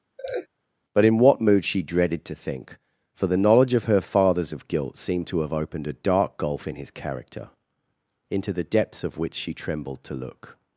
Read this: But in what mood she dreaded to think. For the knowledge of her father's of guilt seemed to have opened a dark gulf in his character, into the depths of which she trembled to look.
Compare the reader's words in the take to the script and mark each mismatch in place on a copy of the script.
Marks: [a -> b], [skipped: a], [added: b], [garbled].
But in what mood she dreaded to think. For the knowledge of her father's of guilt seemed to have opened a dark gulf in his character, into the depths of which she trembled to look.